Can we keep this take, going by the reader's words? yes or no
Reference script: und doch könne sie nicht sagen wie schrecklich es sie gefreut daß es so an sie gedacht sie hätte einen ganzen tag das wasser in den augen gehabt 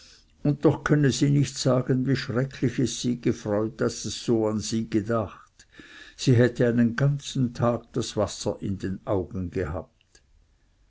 yes